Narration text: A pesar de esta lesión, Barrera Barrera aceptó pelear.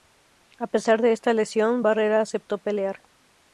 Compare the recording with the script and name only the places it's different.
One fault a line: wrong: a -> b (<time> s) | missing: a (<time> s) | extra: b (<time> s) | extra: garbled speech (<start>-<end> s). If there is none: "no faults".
missing: Barrera (2.2 s)